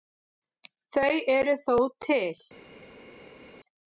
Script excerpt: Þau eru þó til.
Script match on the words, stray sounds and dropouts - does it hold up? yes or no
yes